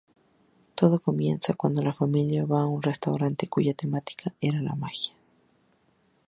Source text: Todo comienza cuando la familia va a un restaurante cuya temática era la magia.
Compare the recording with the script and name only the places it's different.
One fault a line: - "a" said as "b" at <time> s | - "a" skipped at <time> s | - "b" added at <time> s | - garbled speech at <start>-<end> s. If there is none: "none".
none